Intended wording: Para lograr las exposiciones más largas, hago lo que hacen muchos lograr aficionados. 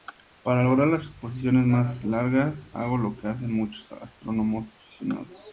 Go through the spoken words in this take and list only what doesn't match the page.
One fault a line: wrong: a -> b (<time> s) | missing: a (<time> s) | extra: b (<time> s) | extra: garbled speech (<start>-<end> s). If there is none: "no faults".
wrong: lograr -> astrónomos (3.9 s)